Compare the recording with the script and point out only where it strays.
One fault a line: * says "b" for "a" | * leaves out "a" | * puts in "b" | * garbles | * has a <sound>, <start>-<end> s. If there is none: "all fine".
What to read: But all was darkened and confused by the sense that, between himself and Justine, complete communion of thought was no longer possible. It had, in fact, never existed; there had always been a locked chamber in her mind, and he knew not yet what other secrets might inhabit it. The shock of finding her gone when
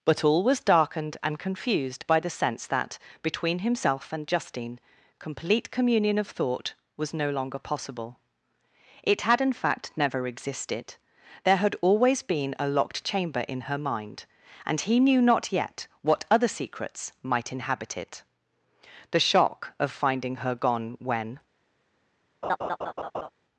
* has a laugh, 22.4-23.3 s